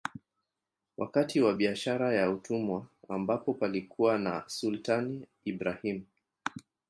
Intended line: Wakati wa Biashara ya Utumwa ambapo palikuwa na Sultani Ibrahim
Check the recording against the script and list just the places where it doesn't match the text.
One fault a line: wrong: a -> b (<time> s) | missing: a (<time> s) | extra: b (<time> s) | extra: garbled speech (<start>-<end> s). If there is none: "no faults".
no faults